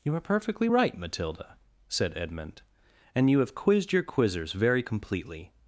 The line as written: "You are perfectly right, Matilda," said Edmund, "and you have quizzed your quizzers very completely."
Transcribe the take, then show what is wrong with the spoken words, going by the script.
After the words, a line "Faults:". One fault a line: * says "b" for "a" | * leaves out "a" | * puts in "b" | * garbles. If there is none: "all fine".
"You are perfectly right, Matilda," said Edmund, "and you have quizzed your quizzers very completely."
Faults:
all fine